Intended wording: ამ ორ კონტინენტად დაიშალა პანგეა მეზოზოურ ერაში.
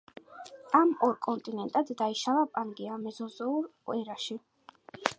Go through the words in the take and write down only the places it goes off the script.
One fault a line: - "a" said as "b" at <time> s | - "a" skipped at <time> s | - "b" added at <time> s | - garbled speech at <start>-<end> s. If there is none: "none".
none